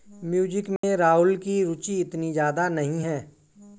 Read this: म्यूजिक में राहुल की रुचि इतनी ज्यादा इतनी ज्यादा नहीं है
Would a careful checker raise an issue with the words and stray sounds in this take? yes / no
yes